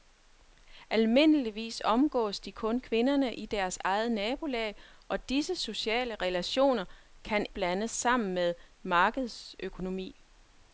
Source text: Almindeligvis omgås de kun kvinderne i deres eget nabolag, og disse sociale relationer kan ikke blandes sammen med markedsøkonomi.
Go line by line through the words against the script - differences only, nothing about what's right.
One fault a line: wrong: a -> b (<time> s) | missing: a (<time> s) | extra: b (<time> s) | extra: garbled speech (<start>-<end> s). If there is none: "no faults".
missing: ikke (7.5 s)